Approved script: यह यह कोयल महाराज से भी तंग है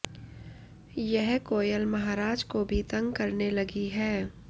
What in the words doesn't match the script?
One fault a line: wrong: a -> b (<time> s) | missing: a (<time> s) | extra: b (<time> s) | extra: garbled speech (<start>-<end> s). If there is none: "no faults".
missing: यह (1.4 s)
wrong: से -> को (2.4 s)
extra: करने लगी (3.1 s)